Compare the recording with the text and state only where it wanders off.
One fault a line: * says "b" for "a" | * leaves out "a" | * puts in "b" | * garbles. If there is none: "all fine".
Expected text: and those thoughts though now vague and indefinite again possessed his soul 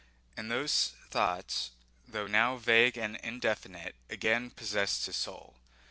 all fine